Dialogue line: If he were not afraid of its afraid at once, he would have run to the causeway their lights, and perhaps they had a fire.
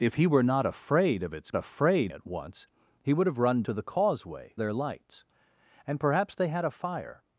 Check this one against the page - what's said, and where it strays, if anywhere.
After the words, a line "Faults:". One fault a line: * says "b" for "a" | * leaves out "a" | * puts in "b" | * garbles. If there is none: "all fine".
If he were not afraid of its afraid at once, he would have run to the causeway their lights, and perhaps they had a fire.
Faults:
all fine